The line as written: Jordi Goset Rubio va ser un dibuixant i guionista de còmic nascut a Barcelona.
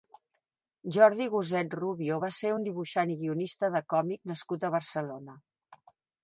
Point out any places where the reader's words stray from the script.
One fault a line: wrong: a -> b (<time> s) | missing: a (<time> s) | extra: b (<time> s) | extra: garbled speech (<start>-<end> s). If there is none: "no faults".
no faults